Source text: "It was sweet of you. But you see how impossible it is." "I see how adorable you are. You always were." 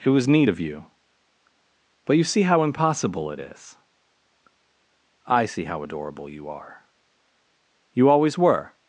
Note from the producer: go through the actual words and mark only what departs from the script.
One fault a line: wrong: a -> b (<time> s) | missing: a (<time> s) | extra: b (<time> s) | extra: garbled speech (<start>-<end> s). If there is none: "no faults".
wrong: sweet -> neat (0.3 s)